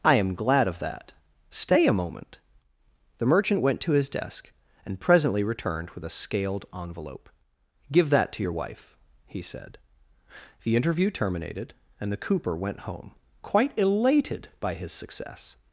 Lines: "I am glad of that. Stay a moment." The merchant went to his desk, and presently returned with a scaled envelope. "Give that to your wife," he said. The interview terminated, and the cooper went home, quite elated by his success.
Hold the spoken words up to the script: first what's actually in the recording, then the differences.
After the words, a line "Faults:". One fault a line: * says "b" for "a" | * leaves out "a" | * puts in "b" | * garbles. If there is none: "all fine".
"I am glad of that. Stay a moment." The merchant went to his desk, and presently returned with a scaled envelope. "Give that to your wife," he said. The interview terminated, and the cooper went home, quite elated by his success.
Faults:
all fine